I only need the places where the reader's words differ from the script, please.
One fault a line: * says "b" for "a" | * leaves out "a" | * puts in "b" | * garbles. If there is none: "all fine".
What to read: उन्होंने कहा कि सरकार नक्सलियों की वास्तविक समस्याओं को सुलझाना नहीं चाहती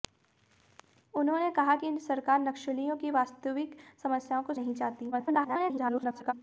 * leaves out "सुलझाना"
* garbles